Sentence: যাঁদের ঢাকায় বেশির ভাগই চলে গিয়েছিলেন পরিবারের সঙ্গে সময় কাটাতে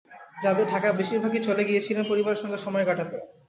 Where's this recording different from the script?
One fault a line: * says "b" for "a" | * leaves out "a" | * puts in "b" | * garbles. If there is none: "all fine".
all fine